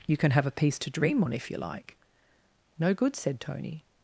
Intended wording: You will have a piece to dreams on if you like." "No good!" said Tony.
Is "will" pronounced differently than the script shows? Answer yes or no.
yes